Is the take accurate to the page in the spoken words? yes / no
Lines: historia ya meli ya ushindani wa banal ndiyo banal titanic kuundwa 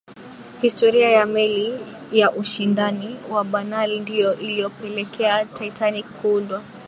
no